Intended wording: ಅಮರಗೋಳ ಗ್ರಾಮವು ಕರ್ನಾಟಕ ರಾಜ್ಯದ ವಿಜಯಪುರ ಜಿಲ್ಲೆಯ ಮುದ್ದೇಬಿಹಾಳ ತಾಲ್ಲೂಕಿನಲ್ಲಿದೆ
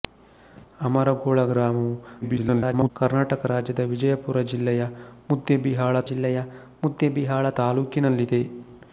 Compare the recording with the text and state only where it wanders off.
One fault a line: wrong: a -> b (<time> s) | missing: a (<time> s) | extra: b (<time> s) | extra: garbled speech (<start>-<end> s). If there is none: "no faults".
extra: garbled speech (2.2-2.9 s)
extra: ಜಿಲ್ಲೆಯ ಮುದ್ದೇಬಿಹಾಳ (6.1 s)